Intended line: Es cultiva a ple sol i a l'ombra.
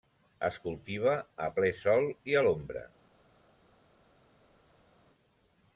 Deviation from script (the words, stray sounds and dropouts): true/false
false